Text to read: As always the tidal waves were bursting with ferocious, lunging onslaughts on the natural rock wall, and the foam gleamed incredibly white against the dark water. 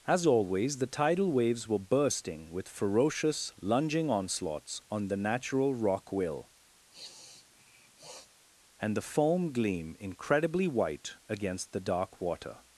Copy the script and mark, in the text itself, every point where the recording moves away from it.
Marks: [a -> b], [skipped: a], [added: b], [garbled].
As always the tidal waves were bursting with ferocious, lunging onslaughts on the natural rock [wall, -> will] and the foam [gleamed -> gleam] incredibly white against the dark water.